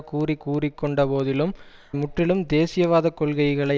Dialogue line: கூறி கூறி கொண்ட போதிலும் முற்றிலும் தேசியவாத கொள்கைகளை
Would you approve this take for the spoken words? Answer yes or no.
yes